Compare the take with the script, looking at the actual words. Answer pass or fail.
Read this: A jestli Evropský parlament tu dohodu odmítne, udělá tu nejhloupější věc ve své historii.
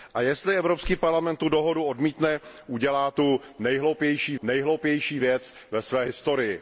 fail